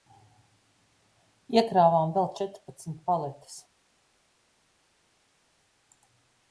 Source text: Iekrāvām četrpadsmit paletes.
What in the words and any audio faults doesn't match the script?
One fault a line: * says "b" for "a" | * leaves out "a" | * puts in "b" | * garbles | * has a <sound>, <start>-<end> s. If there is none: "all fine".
* puts in "vēl"